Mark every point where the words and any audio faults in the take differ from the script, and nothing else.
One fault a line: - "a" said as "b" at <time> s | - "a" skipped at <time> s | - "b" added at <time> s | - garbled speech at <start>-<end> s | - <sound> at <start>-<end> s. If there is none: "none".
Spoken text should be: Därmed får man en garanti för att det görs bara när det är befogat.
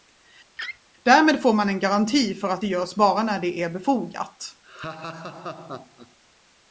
- laugh at 0.6-0.8 s
- laugh at 4.6-6.2 s